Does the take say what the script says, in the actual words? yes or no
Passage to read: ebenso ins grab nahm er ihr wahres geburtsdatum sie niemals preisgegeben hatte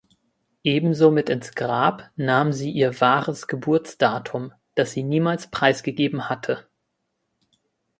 no